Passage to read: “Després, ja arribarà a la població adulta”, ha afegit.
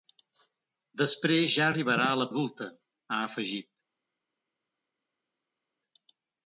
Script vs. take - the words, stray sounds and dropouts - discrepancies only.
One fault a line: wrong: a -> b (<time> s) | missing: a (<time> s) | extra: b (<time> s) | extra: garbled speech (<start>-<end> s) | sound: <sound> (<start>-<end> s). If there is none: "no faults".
missing: població (2.3 s)